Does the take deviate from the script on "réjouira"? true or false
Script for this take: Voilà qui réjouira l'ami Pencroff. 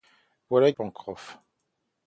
true